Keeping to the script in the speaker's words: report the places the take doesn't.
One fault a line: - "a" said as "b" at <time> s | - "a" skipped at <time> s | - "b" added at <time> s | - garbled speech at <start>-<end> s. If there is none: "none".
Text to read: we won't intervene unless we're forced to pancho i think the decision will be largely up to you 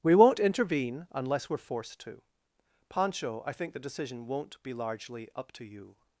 - "will" said as "won't" at 4.3 s